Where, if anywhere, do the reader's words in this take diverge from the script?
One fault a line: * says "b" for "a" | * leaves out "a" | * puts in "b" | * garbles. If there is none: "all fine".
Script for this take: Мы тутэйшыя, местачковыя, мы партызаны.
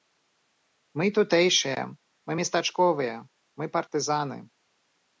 * puts in "мы"